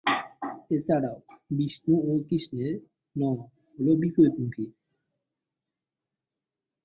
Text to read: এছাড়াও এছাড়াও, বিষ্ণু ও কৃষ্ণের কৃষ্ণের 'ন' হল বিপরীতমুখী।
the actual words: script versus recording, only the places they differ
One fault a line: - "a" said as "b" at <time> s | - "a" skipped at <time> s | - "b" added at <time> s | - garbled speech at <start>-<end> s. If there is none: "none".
- "এছাড়াও" skipped at 1.2 s
- "কৃষ্ণের" skipped at 2.7 s